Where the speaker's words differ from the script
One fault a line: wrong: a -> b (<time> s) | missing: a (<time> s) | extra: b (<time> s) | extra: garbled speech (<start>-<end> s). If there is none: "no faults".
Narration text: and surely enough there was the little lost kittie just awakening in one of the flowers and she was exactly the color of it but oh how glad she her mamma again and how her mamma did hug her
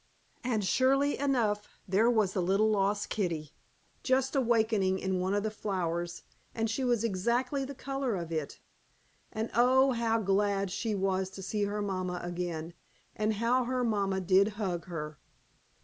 wrong: but -> and (9.3 s)
extra: was to see (10.9 s)